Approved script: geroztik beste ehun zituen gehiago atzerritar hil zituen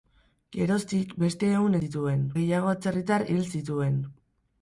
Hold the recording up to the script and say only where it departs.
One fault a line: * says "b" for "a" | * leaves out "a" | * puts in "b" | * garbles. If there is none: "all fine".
all fine